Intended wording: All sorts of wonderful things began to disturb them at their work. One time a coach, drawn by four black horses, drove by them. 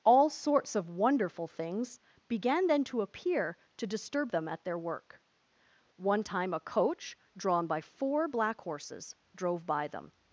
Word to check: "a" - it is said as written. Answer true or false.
true